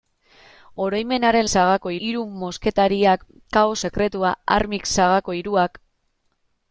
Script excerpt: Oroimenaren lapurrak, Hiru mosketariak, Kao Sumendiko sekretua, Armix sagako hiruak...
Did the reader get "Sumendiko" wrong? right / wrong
wrong